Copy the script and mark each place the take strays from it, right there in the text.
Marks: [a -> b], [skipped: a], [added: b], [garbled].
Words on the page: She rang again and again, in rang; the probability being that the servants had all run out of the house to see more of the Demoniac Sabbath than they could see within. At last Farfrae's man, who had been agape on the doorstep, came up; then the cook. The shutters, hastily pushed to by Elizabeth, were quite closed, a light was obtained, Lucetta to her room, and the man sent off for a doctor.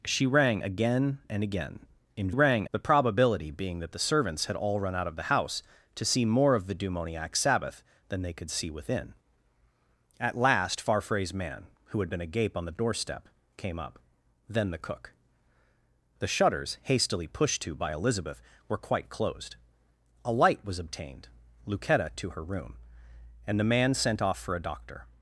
She rang again and again, in rang; the probability being that the servants had all run out of the house to see more of the Demoniac Sabbath than they could see within. At last Farfrae's man, who had been agape on the doorstep, came up; then the cook. The shutters, hastily pushed to by Elizabeth, were quite closed, a light was obtained, Lucetta to her room, and the man sent off for a doctor.